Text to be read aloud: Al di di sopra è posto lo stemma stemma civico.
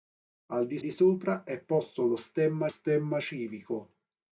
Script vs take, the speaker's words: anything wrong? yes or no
no